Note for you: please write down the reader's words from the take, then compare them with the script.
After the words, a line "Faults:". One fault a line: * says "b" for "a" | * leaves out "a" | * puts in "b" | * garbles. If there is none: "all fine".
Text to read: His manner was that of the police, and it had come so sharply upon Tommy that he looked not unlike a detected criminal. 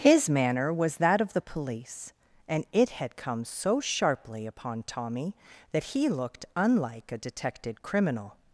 His manner was that of the police, and it had come so sharply upon Tommy that he looked unlike a detected criminal.
Faults:
* leaves out "not"